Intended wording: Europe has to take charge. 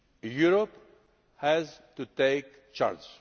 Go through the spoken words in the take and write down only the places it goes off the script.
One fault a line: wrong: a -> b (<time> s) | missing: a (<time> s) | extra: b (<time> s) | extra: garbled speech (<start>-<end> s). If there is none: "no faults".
no faults